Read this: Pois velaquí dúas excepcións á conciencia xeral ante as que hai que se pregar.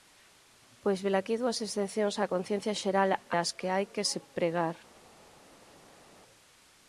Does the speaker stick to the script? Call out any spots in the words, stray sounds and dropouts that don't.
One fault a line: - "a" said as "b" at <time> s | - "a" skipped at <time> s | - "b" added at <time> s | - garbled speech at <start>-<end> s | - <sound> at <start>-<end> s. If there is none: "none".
- "ante" skipped at 3.1 s